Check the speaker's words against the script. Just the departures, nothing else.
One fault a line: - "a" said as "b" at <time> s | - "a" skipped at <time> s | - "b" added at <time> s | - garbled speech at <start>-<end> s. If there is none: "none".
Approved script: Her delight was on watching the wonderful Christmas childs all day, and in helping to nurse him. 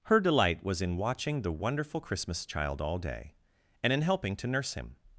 - "on" said as "in" at 0.8 s
- "childs" said as "child" at 2.5 s